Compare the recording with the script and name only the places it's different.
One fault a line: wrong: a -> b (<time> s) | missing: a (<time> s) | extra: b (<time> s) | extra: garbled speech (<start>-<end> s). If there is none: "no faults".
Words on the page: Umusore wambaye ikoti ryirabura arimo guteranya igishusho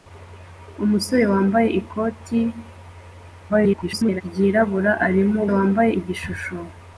extra: garbled speech (3.5-4.2 s)
wrong: guteranya -> wambaye (5.5 s)